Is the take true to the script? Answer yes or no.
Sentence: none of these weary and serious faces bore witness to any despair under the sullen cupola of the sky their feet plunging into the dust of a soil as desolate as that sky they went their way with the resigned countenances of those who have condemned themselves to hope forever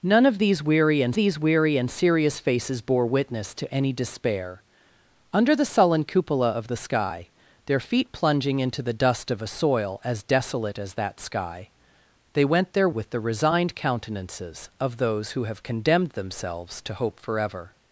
no